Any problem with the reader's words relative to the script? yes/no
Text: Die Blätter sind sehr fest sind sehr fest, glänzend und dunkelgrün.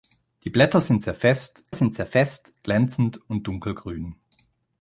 no